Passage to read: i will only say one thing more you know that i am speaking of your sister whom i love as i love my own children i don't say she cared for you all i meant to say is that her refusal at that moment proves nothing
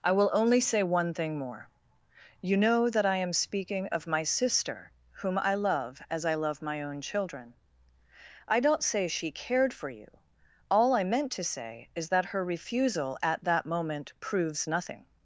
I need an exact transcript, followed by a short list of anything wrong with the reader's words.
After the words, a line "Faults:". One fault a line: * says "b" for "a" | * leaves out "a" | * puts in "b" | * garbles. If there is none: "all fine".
i will only say one thing more you know that i am speaking of my sister whom i love as i love my own children i don't say she cared for you all i meant to say is that her refusal at that moment proves nothing
Faults:
* says "my" for "your"